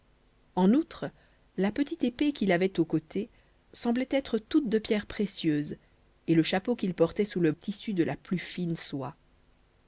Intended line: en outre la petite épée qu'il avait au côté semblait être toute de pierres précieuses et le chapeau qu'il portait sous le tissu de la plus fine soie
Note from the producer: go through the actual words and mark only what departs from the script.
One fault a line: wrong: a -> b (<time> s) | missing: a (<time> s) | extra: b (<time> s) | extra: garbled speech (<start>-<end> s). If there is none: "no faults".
no faults